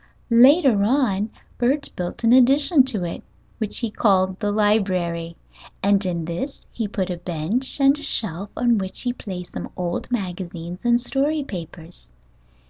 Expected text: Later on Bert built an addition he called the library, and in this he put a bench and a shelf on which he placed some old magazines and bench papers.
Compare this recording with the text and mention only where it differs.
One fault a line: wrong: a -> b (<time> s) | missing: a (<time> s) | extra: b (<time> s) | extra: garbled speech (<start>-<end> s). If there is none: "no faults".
extra: to it which (2.9 s)
wrong: bench -> story (11.0 s)